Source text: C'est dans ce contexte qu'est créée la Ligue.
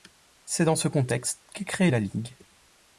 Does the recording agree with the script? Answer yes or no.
yes